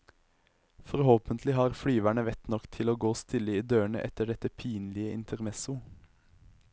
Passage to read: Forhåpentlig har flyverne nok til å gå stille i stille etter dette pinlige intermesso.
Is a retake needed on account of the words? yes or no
yes